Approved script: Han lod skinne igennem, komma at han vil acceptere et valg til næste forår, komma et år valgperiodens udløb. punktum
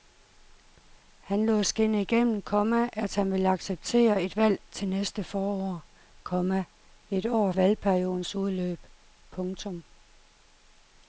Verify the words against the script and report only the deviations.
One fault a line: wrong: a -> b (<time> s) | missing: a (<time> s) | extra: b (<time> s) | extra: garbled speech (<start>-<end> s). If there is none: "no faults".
no faults